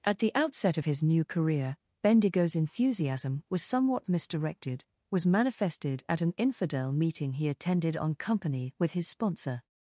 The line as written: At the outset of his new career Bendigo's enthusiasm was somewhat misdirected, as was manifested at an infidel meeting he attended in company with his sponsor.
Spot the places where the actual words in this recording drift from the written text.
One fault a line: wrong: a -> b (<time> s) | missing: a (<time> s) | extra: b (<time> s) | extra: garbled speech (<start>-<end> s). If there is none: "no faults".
missing: as (4.9 s)
wrong: in -> on (8.0 s)